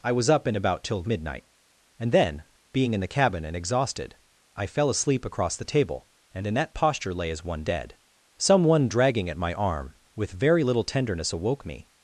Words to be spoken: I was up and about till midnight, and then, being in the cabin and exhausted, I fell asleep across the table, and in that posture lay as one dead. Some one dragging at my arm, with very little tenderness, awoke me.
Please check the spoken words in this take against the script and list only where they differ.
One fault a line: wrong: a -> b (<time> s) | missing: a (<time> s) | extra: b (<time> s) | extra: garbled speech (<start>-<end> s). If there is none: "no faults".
no faults